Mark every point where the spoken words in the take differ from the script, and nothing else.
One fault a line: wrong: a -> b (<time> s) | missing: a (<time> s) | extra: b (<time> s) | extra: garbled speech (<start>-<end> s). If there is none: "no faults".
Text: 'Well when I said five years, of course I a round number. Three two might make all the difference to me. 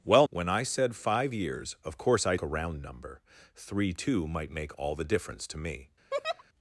no faults